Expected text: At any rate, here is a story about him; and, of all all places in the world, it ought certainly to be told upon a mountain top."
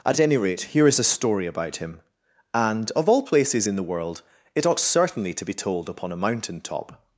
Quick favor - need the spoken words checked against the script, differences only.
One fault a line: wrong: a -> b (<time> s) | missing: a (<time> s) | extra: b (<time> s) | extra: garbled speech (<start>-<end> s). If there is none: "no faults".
missing: all (3.2 s)